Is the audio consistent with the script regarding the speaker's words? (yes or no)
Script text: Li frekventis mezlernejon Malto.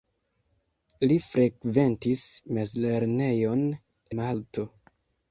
yes